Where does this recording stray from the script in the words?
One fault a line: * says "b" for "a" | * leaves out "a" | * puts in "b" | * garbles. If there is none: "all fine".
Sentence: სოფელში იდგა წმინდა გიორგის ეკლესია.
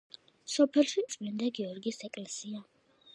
* leaves out "იდგა"